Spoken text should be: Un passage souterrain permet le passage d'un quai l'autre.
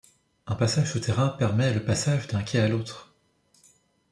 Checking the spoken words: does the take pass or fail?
fail